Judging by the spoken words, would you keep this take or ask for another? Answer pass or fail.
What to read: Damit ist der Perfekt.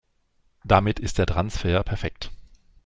fail